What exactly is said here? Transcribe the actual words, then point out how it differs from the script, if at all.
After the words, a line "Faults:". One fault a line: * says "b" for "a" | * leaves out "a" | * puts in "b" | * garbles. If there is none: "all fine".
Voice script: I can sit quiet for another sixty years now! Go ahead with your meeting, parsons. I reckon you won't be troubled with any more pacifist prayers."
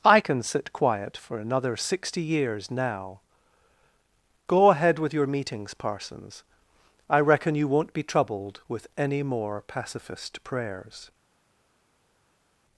I can sit quiet for another sixty years now! Go ahead with your meetings, parsons. I reckon you won't be troubled with any more pacifist prayers."
Faults:
* says "meetings" for "meeting"